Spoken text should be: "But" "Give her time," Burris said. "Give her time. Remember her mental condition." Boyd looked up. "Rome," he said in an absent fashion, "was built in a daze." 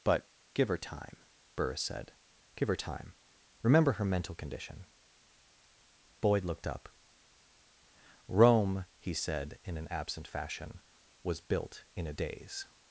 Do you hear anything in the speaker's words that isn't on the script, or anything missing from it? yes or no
no